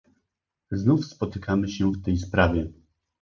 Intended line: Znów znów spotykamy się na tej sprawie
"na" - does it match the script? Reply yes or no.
no